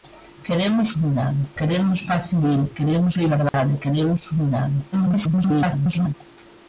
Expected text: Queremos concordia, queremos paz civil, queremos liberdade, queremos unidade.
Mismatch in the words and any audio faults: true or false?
true